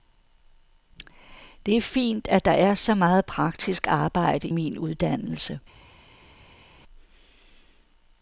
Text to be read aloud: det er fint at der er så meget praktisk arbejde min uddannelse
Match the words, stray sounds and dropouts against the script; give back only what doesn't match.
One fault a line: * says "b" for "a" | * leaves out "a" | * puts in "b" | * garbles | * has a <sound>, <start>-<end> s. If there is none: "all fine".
all fine